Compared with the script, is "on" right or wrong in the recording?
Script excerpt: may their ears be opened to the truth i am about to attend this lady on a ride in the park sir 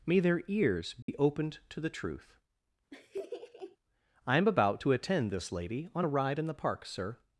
right